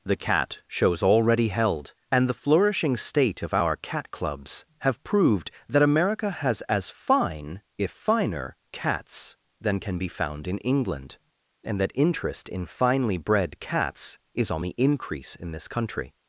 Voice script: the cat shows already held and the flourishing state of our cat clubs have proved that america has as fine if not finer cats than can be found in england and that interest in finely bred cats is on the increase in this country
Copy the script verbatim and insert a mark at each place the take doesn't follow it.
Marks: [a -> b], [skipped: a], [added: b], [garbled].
the cat shows already held and the flourishing state of our cat clubs have proved that america has as fine if [skipped: not] finer cats than can be found in england and that interest in finely bred cats is on the increase in this country